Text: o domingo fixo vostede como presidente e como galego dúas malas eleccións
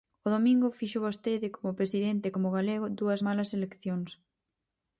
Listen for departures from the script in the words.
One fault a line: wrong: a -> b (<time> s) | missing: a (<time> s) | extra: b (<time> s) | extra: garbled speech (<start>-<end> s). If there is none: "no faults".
no faults